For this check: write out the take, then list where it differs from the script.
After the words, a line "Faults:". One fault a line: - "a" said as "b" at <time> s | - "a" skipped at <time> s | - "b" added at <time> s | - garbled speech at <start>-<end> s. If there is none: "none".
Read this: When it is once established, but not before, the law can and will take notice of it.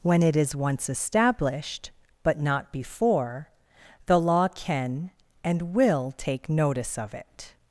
When it is once established, but not before, the law can and will take notice of it.
Faults:
none